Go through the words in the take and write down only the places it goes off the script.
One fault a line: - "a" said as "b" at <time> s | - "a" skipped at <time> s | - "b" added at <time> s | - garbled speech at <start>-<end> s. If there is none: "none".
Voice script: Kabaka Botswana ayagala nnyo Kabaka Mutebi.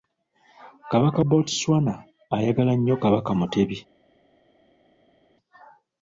none